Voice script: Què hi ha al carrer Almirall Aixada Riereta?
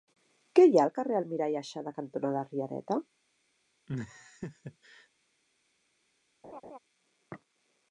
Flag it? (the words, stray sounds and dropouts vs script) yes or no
yes